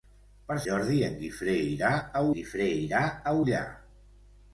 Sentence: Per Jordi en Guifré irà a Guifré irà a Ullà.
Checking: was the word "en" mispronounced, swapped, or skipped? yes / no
no